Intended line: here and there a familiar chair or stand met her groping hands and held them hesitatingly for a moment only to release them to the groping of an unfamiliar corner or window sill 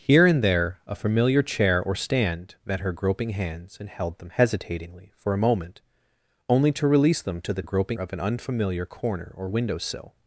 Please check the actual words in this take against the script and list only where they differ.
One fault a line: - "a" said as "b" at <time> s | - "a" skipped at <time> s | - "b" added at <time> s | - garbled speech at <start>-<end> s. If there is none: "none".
none